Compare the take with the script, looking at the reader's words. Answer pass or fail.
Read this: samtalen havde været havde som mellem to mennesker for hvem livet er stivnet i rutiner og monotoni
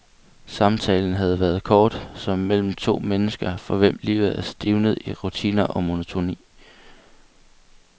fail